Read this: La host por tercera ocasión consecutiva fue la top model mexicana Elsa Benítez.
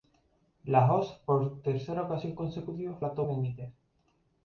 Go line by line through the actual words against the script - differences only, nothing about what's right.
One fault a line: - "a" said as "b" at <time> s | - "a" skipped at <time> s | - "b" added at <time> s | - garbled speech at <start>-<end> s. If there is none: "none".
- "fue" skipped at 3.0 s
- "model mexicana Elsa" skipped at 3.2 s